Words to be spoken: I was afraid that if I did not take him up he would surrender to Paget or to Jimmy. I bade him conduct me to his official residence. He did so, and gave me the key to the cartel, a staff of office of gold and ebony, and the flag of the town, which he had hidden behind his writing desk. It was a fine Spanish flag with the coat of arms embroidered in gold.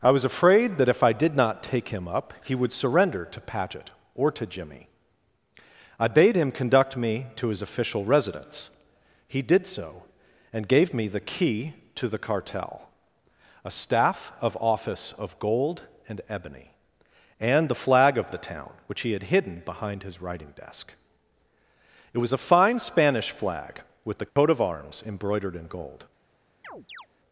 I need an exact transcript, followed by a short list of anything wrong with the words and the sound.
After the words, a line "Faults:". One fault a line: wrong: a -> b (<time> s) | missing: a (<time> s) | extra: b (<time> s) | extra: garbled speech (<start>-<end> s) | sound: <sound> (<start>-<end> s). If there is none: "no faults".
I was afraid that if I did not take him up he would surrender to Paget or to Jimmy. I bade him conduct me to his official residence. He did so, and gave me the key to the cartel, a staff of office of gold and ebony, and the flag of the town, which he had hidden behind his writing desk. It was a fine Spanish flag with the coat of arms embroidered in gold.
Faults:
sound: dropout (24.3-24.4 s)
sound: chirp (26.6-27.1 s)